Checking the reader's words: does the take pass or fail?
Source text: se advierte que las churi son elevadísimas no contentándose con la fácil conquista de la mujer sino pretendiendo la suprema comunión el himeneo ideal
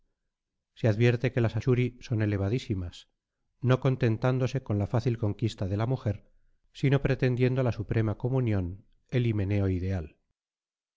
pass